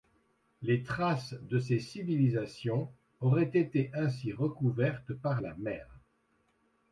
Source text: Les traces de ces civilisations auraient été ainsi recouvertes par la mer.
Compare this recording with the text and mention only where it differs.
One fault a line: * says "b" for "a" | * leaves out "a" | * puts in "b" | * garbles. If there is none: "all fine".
all fine